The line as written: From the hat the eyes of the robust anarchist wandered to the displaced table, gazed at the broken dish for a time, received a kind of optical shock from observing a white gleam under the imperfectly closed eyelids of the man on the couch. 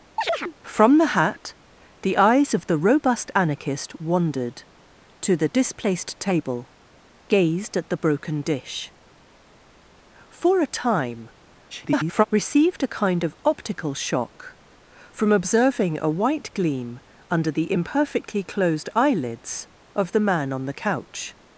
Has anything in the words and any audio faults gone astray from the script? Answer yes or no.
yes